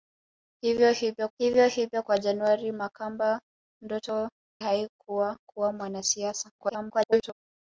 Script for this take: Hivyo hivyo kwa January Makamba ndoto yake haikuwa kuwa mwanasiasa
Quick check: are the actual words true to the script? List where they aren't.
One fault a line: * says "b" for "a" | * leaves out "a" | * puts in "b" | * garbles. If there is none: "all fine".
* puts in "hivyo hivyo"
* leaves out "yake"
* garbles